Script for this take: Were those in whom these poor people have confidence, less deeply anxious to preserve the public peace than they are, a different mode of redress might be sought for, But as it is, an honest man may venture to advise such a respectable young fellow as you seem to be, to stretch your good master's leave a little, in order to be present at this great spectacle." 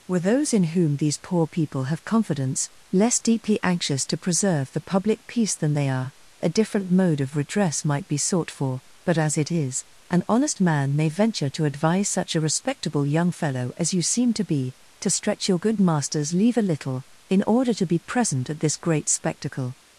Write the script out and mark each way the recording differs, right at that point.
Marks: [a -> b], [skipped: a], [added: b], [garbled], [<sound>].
Were those in whom these poor people have confidence, less deeply anxious to preserve the public peace than they are, a different mode of redress might be sought for, But as it is, an honest man may venture to advise such a respectable young fellow as you seem to be, to stretch your good master's leave a little, in order to be present at this great spectacle."